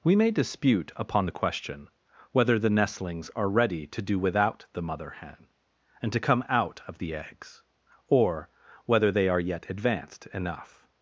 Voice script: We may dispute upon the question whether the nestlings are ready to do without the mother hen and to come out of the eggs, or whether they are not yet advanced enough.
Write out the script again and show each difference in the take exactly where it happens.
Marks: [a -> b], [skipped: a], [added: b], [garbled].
We may dispute upon the question whether the nestlings are ready to do without the mother hen and to come out of the eggs, or whether they are [skipped: not] yet advanced enough.